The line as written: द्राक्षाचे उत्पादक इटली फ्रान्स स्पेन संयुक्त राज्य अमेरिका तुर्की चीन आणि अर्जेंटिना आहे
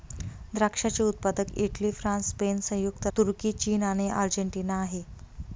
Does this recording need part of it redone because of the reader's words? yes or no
yes